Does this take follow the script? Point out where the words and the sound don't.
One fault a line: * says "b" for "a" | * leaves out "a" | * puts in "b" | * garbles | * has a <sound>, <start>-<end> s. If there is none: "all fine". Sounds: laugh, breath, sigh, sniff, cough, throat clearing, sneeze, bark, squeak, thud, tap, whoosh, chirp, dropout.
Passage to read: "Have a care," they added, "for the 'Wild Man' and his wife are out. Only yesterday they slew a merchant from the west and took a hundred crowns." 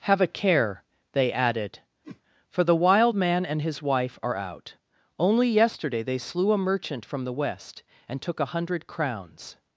* has a whoosh, 2.0-2.2 s